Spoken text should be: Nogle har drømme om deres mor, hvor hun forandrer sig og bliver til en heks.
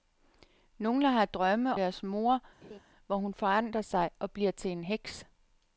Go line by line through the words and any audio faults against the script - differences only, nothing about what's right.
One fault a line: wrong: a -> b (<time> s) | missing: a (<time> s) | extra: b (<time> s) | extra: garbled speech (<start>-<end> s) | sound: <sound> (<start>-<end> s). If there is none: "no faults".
missing: om (1.8 s)
sound: laugh (2.6-2.8 s)